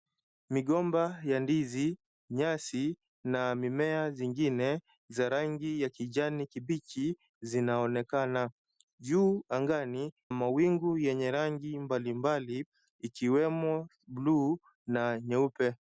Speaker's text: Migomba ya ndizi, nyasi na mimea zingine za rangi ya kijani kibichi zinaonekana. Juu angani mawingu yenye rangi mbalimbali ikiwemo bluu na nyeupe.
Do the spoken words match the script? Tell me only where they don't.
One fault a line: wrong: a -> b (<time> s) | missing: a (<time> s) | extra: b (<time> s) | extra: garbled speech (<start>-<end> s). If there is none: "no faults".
no faults